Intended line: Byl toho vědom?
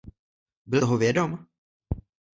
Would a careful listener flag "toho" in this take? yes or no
no